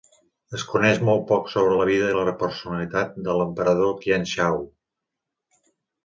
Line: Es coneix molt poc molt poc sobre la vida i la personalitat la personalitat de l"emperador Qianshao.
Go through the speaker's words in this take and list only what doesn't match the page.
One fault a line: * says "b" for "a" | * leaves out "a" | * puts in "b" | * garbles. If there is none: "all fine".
* leaves out "molt poc"
* leaves out "la personalitat"